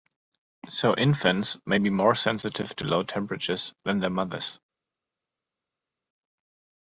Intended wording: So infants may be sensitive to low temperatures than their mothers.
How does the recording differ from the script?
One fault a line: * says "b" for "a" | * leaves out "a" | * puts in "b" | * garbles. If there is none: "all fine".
* puts in "more"